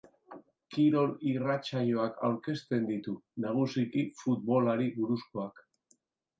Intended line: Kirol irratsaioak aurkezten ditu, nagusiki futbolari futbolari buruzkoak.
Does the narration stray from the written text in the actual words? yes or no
yes